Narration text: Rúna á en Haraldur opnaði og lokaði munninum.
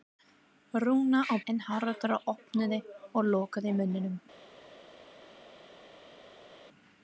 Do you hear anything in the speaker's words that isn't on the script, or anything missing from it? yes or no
no